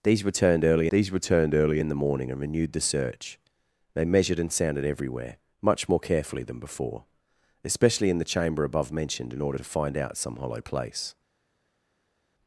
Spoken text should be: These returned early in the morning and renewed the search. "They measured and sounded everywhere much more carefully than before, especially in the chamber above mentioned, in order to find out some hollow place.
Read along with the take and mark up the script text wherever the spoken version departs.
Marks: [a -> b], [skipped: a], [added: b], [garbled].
These returned early [added: these returned early] in the morning and renewed the search. "They measured and sounded everywhere much more carefully than before, especially in the chamber above mentioned, in order to find out some hollow place.